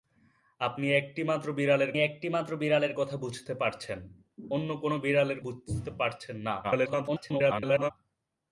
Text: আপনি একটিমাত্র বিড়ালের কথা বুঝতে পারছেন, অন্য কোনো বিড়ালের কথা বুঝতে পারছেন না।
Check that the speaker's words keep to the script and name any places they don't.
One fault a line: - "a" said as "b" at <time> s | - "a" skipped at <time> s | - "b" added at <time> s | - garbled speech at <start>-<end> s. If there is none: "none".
- "একটিমাত্র বিড়ালের" added at 2.0 s
- "কথা" skipped at 5.4 s
- garbled speech at 6.6-7.9 s